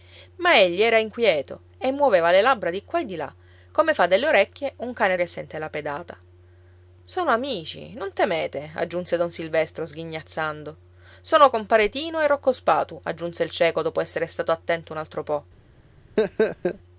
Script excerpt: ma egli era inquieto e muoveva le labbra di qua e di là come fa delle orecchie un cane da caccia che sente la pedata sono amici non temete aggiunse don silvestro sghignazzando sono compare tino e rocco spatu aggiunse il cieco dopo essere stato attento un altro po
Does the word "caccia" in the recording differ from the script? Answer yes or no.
yes